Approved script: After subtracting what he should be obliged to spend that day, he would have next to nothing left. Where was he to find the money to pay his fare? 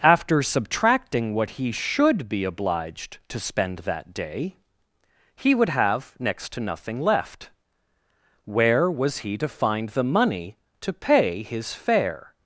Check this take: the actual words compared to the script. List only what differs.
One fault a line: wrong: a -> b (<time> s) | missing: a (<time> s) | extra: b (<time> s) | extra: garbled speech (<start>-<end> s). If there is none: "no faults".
no faults